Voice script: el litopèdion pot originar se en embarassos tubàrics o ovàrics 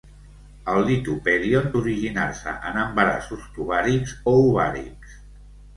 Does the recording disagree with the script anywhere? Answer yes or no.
yes